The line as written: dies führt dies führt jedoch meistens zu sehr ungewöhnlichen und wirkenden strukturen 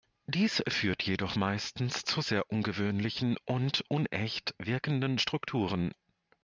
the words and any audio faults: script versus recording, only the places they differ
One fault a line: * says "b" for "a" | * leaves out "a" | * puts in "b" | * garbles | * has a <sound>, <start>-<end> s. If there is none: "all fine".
* leaves out "dies führt"
* puts in "unecht"